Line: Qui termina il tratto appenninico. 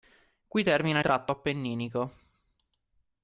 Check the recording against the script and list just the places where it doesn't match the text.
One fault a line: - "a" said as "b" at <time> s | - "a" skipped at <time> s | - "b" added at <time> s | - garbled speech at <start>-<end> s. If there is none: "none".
- "il" skipped at 1.0 s